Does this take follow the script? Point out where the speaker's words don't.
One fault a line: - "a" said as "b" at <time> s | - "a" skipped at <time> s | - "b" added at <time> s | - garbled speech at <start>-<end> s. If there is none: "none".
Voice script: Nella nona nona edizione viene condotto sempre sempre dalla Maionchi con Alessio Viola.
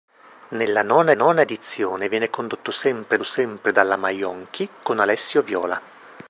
none